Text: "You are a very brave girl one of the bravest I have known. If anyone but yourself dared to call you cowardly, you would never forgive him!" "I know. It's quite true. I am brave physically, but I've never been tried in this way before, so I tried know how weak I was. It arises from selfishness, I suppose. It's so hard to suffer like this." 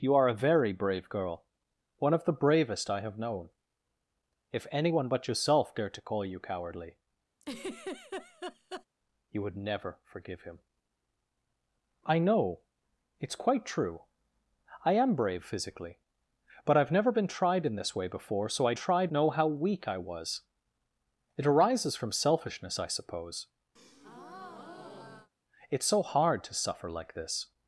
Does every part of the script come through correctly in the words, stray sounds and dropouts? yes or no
no